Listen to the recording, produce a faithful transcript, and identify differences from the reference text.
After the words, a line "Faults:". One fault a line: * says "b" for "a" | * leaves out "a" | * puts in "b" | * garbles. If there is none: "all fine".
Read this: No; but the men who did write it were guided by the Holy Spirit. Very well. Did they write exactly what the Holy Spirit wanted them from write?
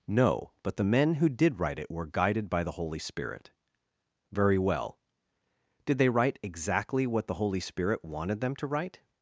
No; but the men who did write it were guided by the Holy Spirit. Very well. Did they write exactly what the Holy Spirit wanted them to write?
Faults:
* says "to" for "from"